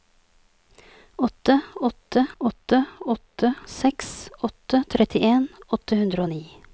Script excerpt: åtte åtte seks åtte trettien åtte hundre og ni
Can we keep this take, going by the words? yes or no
no